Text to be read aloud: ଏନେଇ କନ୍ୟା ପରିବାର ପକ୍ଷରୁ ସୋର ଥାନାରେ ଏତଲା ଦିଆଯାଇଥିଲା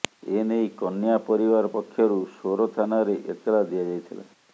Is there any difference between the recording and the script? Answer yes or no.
no